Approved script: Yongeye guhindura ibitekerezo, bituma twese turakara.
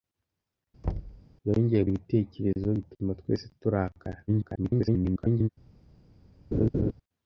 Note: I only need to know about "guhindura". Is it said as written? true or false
false